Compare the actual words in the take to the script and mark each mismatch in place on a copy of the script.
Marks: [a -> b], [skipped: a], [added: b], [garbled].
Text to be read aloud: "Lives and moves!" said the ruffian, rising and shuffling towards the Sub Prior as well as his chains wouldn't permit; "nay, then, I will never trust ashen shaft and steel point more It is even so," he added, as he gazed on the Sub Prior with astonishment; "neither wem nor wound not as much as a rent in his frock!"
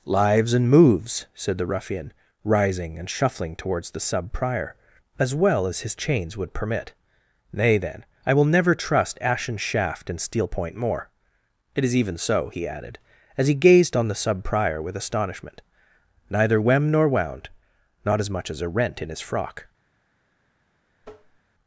"Lives and moves!" said the ruffian, rising and shuffling towards the Sub Prior as well as his chains [wouldn't -> would] permit; "nay, then, I will never trust ashen shaft and steel point more It is even so," he added, as he gazed on the Sub Prior with astonishment; "neither wem nor wound not as much as a rent in his frock!"